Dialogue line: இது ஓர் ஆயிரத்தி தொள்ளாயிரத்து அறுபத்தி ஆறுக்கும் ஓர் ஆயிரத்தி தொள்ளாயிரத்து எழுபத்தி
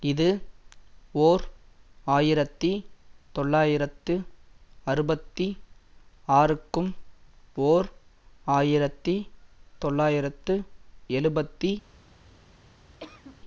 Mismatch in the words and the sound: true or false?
true